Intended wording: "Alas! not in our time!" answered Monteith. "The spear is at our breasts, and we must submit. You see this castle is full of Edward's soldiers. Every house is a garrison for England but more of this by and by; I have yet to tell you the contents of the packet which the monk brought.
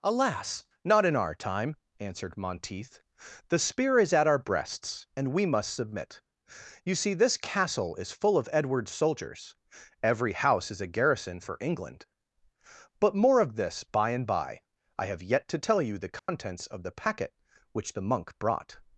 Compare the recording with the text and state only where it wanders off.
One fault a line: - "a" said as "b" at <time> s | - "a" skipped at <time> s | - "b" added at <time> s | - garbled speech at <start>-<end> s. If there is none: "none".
none